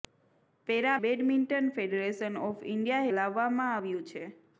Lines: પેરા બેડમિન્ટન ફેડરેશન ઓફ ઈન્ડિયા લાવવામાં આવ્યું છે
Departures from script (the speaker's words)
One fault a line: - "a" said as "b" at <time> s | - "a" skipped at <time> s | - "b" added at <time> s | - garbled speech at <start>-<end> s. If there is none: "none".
none